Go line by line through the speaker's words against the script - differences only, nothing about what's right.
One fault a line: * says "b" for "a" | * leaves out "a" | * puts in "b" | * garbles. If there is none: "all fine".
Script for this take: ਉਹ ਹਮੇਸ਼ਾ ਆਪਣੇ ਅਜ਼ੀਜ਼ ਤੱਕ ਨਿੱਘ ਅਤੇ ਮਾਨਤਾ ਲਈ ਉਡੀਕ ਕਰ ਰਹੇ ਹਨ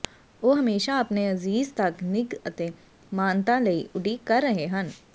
all fine